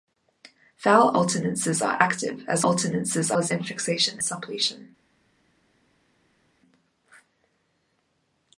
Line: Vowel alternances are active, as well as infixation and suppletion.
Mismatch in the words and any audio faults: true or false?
true